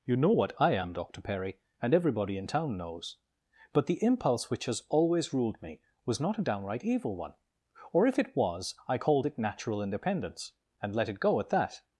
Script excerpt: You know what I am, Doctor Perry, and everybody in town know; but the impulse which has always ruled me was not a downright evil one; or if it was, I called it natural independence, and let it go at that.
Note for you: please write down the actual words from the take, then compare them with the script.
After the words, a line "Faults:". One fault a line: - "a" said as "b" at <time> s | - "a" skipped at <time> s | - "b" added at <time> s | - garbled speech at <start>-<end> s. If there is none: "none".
You know what I am, Doctor Perry, and everybody in town knows; but the impulse which has always ruled me was not a downright evil one; or if it was, I called it natural independence, and let it go at that.
Faults:
- "know" said as "knows" at 2.8 s